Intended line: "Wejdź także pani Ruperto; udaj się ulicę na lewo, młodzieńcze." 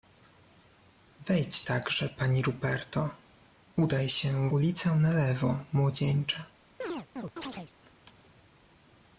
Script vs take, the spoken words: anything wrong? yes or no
no